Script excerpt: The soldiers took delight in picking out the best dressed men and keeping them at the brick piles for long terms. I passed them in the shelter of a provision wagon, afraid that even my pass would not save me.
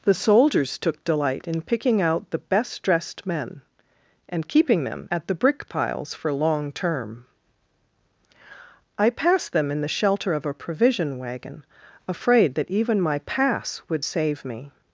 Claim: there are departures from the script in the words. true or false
true